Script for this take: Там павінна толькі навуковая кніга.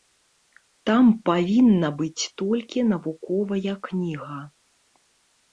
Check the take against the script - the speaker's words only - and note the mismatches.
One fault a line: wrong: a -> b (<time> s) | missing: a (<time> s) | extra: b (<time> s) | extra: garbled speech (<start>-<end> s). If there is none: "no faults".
extra: быць (2.0 s)